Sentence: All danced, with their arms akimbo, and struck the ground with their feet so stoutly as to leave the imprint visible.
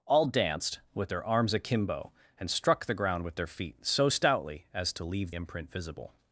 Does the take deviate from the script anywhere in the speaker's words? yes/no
yes